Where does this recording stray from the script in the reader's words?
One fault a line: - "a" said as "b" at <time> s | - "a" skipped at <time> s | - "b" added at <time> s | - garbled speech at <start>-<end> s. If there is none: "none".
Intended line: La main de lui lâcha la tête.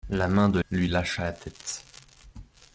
none